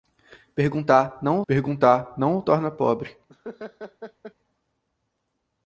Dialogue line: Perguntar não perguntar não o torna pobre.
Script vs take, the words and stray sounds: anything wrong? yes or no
yes